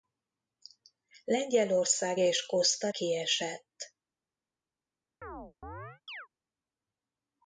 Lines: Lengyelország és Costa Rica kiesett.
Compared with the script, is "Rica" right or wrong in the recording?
wrong